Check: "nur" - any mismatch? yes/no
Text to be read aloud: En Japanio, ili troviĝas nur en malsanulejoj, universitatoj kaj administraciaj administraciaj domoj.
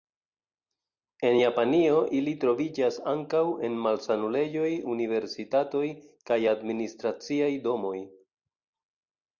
yes